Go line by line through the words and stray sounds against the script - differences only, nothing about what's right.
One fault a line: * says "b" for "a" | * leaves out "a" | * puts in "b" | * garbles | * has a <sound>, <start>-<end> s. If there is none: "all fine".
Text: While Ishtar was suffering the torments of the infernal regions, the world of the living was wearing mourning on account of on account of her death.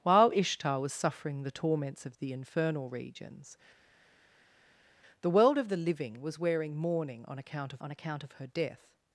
all fine